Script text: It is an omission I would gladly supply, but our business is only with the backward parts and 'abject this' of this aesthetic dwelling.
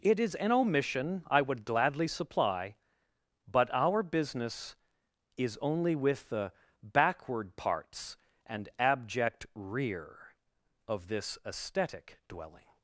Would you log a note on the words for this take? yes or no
yes